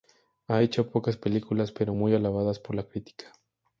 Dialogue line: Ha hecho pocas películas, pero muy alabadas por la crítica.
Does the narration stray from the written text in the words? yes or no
no